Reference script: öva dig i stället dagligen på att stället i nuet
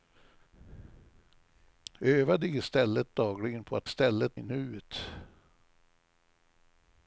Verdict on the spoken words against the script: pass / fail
pass